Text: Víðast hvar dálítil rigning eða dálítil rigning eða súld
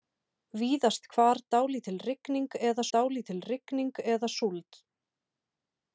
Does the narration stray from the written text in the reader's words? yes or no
no